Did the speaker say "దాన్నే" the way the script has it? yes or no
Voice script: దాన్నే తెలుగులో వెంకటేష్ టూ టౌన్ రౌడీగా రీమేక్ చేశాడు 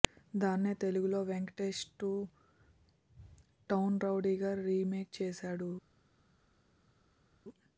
yes